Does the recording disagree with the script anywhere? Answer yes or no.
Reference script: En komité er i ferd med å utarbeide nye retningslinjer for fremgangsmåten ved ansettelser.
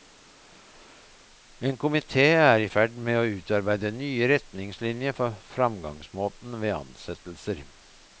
no